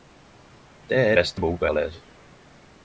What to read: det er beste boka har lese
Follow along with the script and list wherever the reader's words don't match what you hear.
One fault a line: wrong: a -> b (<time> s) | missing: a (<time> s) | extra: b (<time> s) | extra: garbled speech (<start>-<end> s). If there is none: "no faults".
no faults